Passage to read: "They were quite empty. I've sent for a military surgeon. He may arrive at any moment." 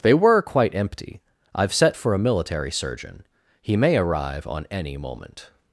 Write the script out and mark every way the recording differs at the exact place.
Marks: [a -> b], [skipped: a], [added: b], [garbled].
"They were quite empty. I've [sent -> set] for a military surgeon. He may arrive [at -> on] any moment."